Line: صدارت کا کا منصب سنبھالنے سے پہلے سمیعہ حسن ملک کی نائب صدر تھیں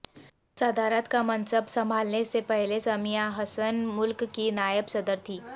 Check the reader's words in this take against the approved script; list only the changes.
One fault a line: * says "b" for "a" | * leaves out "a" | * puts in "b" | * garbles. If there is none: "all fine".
* leaves out "کا"